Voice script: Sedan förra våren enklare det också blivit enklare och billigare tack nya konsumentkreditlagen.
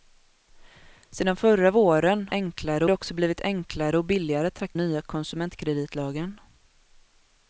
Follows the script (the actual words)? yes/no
yes